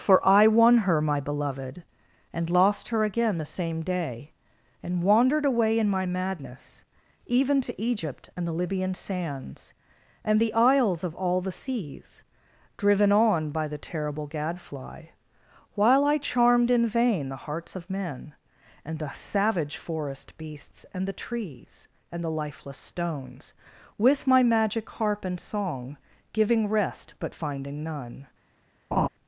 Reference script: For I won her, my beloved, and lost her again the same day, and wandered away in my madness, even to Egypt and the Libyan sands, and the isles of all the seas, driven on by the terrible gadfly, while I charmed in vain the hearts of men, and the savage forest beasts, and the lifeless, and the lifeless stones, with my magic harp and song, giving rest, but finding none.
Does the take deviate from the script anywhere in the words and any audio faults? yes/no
yes